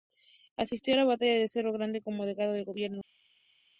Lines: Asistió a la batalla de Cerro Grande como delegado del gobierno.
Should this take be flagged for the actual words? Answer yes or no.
no